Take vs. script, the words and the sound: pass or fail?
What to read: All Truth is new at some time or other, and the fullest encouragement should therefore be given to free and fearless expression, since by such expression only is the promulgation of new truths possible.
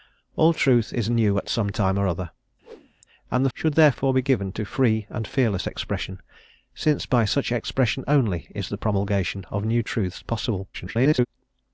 fail